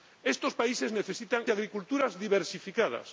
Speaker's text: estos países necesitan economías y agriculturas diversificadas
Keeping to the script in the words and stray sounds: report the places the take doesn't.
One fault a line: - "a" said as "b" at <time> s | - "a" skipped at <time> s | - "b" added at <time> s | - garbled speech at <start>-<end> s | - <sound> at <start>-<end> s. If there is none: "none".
- "economías" skipped at 1.5 s